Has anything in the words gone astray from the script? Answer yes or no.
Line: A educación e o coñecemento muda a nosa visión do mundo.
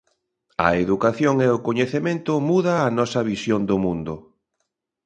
no